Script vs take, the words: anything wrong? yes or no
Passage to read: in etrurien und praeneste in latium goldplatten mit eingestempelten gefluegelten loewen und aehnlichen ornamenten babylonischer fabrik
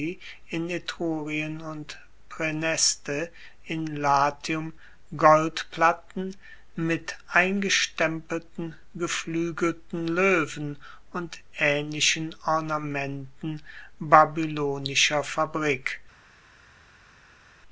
no